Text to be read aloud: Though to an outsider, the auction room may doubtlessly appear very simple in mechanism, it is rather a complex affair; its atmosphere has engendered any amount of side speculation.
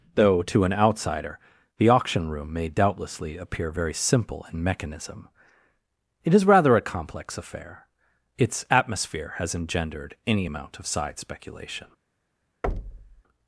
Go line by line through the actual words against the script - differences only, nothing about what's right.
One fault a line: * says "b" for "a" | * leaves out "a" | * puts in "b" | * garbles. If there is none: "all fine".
all fine